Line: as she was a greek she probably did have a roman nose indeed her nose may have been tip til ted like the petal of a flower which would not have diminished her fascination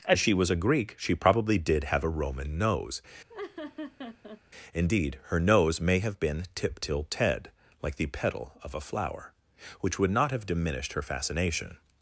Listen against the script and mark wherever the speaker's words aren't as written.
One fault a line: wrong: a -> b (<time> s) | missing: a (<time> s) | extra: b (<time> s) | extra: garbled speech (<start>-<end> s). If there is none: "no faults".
no faults